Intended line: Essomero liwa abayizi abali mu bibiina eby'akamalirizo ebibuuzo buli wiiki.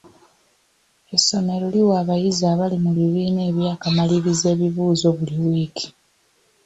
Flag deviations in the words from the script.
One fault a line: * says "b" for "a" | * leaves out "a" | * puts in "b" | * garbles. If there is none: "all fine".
all fine